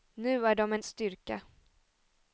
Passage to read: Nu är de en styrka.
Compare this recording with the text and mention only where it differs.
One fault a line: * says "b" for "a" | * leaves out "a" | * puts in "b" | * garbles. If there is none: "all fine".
all fine